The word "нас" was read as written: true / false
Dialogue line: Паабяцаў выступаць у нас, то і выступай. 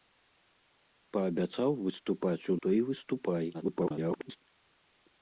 false